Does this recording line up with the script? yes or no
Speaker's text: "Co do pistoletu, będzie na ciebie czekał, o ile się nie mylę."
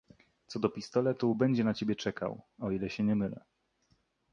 yes